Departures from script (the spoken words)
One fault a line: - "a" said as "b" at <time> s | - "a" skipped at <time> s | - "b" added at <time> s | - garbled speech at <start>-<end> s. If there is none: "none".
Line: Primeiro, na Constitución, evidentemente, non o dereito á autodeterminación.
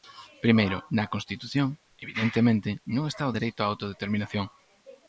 - "está" added at 3.1 s